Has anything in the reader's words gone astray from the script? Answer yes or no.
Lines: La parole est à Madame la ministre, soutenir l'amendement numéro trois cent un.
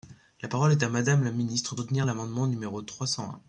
no